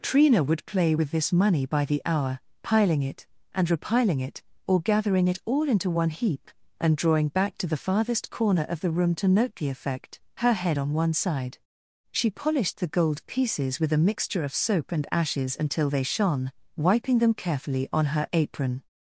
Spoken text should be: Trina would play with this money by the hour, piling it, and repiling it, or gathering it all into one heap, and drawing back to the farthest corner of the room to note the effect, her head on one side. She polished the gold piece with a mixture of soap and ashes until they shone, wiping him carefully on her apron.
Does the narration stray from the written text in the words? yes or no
yes